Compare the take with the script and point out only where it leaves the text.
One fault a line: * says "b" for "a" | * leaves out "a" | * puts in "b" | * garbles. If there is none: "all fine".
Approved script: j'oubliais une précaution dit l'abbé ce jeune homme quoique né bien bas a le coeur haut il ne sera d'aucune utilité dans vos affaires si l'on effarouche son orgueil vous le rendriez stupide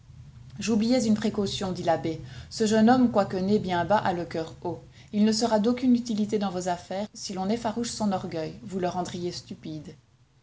all fine